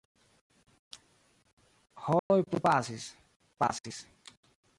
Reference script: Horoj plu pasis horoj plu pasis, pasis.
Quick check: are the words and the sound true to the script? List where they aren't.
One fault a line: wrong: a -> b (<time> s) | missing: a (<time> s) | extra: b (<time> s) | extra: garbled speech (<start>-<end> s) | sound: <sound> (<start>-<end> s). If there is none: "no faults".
sound: dropout (2.2-2.3 s)
missing: horoj plu pasis (3.2 s)